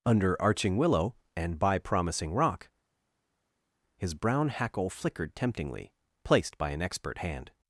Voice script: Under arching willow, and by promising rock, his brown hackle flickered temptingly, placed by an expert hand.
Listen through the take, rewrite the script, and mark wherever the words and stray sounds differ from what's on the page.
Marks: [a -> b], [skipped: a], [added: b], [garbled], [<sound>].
Under arching willow, and by promising rock, his brown hackle flickered temptingly, placed by an expert hand.